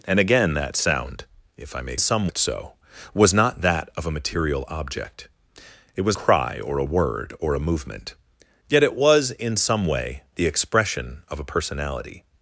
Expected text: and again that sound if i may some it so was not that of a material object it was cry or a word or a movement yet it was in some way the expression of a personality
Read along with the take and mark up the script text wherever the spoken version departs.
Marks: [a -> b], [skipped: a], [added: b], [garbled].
and again that sound if i may some it so was not that of a material object it was cry or a word or a movement yet it was in some way the expression of a personality